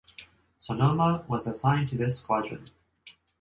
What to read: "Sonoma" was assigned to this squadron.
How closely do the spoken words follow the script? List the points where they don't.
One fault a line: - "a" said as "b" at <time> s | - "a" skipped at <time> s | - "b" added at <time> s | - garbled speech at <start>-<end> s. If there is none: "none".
none